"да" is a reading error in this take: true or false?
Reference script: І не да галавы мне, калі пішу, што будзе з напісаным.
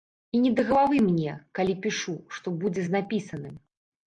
false